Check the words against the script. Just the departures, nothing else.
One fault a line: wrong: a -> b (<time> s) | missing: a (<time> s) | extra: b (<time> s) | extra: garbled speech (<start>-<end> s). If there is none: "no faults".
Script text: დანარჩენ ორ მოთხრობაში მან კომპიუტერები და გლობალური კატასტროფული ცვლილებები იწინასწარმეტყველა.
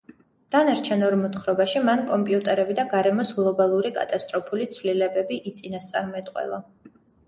extra: გარემოს (3.0 s)